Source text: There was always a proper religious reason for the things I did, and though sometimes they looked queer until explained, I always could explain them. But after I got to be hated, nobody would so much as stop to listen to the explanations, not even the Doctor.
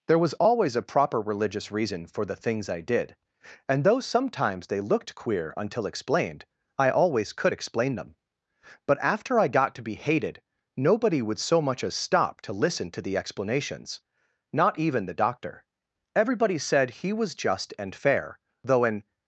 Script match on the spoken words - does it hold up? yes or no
no